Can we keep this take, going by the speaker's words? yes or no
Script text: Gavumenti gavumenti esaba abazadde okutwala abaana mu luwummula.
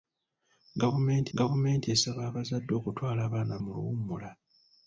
yes